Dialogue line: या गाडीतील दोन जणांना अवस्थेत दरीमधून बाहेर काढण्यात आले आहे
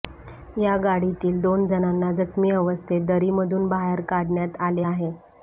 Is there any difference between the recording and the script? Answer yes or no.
yes